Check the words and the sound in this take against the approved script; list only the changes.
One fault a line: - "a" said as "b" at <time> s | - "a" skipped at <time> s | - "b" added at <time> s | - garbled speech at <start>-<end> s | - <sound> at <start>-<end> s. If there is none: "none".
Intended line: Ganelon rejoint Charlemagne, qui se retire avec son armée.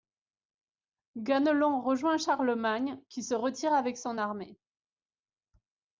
none